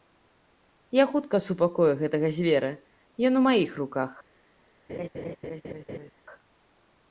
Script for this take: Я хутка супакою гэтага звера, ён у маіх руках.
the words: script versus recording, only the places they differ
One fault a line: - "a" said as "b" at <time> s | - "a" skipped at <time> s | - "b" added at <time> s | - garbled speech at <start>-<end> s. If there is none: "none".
none